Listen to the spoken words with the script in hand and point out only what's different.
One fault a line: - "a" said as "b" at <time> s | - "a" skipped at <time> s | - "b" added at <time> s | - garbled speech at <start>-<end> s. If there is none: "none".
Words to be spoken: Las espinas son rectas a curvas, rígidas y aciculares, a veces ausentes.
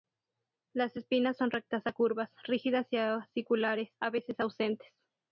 none